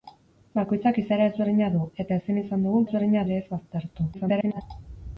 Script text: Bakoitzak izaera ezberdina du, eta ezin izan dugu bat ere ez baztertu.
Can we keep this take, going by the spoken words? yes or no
no